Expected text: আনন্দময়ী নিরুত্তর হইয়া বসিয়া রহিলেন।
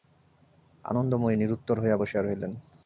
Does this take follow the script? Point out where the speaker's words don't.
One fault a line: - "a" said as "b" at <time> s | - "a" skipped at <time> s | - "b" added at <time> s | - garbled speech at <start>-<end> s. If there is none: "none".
none